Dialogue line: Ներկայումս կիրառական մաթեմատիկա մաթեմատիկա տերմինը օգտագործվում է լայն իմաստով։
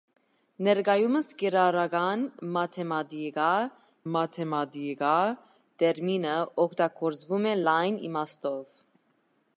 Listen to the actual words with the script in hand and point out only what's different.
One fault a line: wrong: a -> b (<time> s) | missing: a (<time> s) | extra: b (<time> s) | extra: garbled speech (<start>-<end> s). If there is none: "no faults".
no faults